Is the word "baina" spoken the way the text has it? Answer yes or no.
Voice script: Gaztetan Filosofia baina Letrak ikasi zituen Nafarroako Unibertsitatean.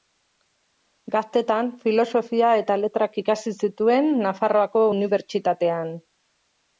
no